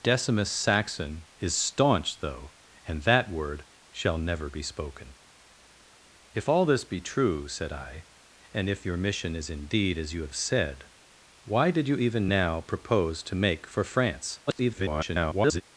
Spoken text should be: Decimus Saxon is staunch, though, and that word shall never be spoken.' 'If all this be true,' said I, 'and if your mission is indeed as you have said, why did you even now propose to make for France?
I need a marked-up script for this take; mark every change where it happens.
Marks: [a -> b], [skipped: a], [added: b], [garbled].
Decimus Saxon is staunch, though, and that word shall never be spoken.' 'If all this be true,' said I, 'and if your mission is indeed as you have said, why did you even now propose to make for France? [garbled]